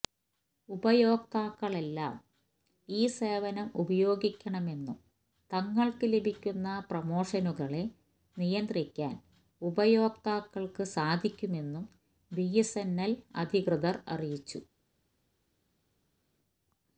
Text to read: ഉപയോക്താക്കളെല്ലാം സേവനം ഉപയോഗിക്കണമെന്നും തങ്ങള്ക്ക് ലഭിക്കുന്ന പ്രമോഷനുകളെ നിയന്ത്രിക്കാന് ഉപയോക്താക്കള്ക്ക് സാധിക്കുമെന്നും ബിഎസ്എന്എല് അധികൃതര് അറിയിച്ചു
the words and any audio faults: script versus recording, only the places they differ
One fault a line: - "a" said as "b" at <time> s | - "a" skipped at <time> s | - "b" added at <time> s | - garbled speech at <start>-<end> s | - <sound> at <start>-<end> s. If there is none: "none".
- "ഈ" added at 2.9 s